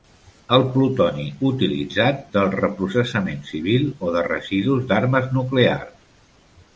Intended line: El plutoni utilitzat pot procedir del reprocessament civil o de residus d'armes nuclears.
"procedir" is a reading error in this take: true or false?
true